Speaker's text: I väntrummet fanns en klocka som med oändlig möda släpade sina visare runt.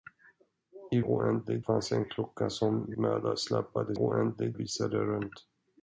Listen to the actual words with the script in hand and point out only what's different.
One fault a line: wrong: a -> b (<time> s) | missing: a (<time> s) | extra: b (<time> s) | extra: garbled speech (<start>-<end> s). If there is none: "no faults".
wrong: väntrummet -> oändlig (1.0 s)
missing: med oändlig (3.0 s)
wrong: sina -> oändlig (3.9 s)